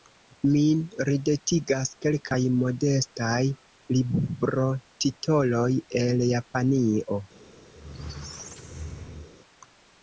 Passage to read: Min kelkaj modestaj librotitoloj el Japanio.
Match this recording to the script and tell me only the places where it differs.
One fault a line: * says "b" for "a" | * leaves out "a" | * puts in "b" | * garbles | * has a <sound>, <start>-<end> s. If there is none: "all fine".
* puts in "ridetigas"
* has a squeak, 7.7-9.3 s